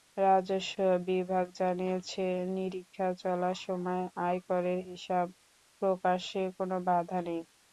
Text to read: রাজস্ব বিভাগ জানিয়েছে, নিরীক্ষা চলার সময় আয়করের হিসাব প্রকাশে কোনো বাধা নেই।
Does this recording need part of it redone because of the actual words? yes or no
no